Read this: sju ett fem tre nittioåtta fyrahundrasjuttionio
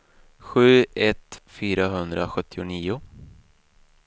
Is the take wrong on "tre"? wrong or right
wrong